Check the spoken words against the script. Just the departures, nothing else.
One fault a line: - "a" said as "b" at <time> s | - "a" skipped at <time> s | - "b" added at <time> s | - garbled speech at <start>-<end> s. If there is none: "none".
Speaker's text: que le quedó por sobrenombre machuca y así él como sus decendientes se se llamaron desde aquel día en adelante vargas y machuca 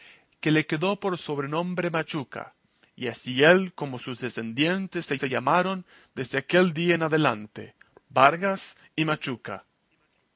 none